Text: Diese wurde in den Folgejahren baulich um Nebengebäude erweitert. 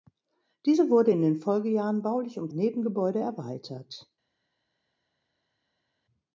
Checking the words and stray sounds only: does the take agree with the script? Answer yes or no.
yes